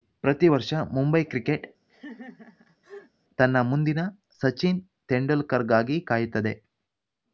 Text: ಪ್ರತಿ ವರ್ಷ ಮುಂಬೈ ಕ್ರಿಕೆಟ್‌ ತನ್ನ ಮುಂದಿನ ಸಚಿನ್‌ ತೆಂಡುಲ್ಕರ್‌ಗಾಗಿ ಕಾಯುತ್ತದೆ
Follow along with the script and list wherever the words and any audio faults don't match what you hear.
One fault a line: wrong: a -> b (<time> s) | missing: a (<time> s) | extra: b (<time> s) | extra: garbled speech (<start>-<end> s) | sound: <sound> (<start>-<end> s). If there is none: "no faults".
sound: laugh (1.9-3.1 s)